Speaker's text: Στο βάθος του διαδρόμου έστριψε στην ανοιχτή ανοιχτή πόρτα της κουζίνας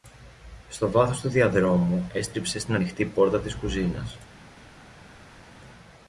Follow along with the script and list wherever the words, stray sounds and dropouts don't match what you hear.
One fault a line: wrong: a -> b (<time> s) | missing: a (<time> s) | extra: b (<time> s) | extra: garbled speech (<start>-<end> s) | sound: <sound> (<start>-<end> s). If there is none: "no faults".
missing: ανοιχτή (3.0 s)